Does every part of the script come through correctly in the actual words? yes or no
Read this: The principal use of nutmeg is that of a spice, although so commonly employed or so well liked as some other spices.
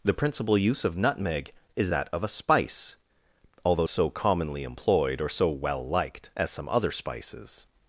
yes